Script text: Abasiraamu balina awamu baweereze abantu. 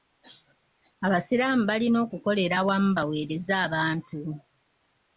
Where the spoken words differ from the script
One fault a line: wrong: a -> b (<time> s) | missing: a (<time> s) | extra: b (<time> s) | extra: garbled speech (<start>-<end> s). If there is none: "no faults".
extra: okukolera (2.0 s)